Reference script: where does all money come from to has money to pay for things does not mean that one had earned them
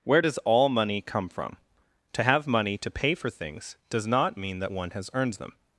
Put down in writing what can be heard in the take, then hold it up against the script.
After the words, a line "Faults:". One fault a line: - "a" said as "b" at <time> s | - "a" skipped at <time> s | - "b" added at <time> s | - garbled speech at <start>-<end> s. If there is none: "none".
where does all money come from to have money to pay for things does not mean that one has earned them
Faults:
- "has" said as "have" at 2.2 s
- "had" said as "has" at 4.9 s